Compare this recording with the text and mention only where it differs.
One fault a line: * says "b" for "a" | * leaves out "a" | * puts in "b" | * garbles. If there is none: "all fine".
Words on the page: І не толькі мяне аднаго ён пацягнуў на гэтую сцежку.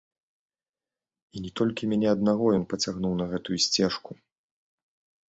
all fine